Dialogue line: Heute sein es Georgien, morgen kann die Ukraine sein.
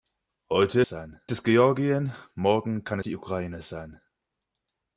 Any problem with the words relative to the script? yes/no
no